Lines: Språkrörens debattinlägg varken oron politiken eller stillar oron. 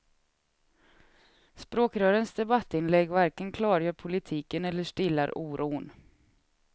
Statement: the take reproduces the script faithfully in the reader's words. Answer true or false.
false